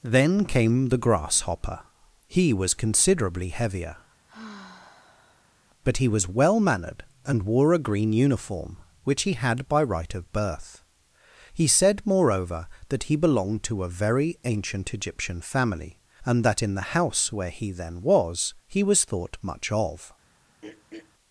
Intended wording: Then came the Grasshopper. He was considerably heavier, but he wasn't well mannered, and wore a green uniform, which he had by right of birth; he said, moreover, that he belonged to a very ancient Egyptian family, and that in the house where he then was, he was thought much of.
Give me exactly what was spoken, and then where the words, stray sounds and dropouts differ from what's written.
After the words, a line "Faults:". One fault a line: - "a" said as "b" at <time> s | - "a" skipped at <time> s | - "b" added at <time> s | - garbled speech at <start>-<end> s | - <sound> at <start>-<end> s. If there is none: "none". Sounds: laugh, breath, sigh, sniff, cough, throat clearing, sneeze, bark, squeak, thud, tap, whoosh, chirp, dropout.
Then came the Grasshopper. He was considerably heavier, but he was well mannered, and wore a green uniform, which he had by right of birth; he said, moreover, that he belonged to a very ancient Egyptian family, and that in the house where he then was, he was thought much of.
Faults:
- sigh at 4.3-5.6 s
- "wasn't" said as "was" at 6.1 s
- throat clearing at 20.6-21.1 s